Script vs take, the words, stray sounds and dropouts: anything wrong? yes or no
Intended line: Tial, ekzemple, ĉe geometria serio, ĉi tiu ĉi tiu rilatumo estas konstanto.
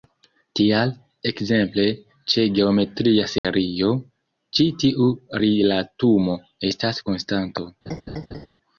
yes